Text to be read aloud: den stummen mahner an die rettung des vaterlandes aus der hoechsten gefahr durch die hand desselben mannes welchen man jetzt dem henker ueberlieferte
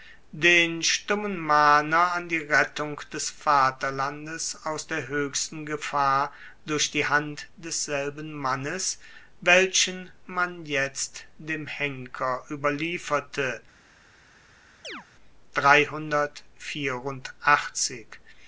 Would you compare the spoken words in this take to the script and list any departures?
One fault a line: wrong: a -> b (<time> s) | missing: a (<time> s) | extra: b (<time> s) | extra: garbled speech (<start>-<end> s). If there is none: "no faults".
no faults